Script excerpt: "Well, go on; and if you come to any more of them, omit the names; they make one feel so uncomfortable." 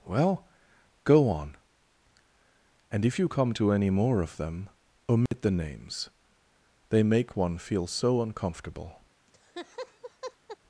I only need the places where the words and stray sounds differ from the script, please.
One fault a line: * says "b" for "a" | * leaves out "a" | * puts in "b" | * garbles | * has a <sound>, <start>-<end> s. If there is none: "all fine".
* has a dropout, 5.3-5.3 s
* has a laugh, 9.3-10.6 s